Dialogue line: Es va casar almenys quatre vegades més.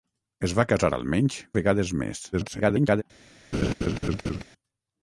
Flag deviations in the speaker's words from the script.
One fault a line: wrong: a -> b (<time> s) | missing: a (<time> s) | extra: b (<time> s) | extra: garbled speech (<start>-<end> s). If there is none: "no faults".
missing: quatre (1.4 s)
extra: garbled speech (2.3-3.0 s)